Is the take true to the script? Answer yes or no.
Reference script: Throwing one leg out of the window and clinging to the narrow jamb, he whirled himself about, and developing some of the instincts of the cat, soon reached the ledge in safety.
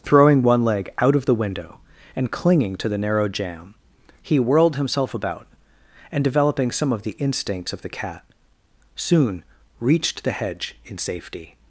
no